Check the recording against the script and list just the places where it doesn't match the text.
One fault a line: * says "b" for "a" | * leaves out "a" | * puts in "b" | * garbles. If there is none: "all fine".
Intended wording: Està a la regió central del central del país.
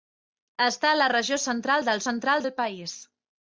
all fine